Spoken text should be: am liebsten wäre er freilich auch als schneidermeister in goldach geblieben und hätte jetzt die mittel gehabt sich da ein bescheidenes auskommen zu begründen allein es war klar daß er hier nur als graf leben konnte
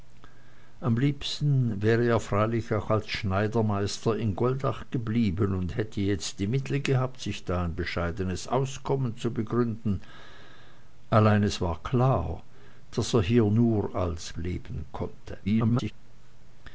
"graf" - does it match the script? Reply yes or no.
no